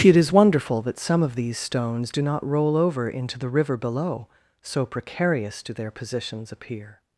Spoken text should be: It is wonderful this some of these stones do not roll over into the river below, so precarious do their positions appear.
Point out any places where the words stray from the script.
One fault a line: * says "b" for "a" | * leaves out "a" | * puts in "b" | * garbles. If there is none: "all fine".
* says "that" for "this"